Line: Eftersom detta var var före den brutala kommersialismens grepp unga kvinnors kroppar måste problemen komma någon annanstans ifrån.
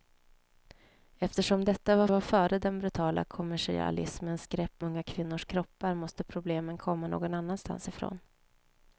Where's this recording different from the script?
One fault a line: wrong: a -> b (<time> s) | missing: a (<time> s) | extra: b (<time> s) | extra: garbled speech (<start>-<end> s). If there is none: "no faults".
no faults